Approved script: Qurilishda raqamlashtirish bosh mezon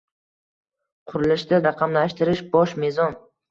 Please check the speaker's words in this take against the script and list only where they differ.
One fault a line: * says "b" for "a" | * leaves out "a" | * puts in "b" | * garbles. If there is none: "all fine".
all fine